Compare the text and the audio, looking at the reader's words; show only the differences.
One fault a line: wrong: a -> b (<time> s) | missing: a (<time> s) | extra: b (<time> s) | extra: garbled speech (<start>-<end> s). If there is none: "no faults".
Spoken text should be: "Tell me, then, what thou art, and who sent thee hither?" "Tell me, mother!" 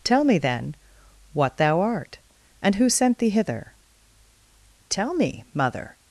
no faults